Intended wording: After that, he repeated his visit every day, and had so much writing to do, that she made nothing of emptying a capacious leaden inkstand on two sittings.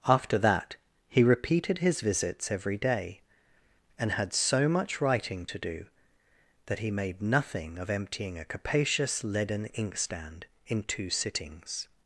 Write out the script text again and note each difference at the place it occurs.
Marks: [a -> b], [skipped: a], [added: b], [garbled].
After that, he repeated his [visit -> visits] every day, and had so much writing to do, that [she -> he] made nothing of emptying a capacious leaden inkstand [on -> in] two sittings.